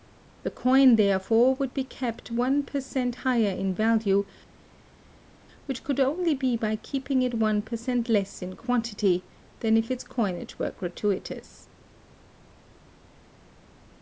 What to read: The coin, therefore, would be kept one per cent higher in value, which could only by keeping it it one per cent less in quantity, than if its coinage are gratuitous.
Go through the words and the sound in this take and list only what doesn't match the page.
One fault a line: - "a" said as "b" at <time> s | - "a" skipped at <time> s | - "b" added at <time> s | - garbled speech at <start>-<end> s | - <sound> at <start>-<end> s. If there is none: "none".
- "be" added at 6.3 s
- "it" skipped at 7.3 s
- "are" said as "were" at 10.6 s